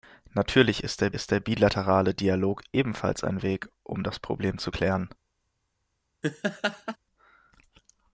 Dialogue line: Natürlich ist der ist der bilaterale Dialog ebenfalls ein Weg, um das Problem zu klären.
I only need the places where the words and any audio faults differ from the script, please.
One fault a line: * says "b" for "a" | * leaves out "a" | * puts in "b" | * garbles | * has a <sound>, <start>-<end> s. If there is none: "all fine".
* has a laugh, 6.2-7.0 s